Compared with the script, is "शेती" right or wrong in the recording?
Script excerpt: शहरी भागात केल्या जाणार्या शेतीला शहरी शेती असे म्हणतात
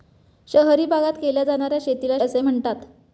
wrong